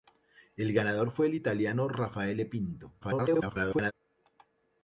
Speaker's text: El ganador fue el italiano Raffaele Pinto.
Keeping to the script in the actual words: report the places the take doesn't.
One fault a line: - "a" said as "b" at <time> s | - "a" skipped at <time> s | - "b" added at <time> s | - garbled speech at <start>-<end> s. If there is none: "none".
- garbled speech at 3.0-3.9 s